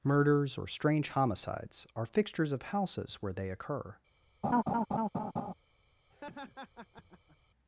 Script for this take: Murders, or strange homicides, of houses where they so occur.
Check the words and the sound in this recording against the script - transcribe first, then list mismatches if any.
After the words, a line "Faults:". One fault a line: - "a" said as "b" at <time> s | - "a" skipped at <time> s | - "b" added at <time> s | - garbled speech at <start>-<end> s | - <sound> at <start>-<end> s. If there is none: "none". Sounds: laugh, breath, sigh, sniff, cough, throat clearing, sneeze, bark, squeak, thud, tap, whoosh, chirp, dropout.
Murders, or strange homicides, are fixtures of houses where they occur.
Faults:
- "are fixtures" added at 1.9 s
- "so" skipped at 3.5 s
- laugh at 4.4-5.5 s
- laugh at 6.1-7.4 s